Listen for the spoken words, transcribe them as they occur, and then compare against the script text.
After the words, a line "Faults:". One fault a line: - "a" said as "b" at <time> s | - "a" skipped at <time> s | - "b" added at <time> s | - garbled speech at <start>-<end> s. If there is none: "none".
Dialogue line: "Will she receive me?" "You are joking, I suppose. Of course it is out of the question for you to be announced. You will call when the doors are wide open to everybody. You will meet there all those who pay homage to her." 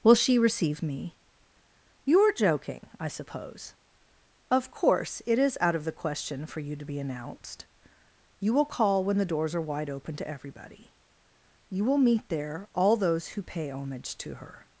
"Will she receive me?" "You are joking, I suppose. Of course it is out of the question for you to be announced. You will call when the doors are wide open to everybody. You will meet there all those who pay homage to her."
Faults:
none